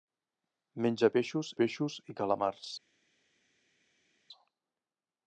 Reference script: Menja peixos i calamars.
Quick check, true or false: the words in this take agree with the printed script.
false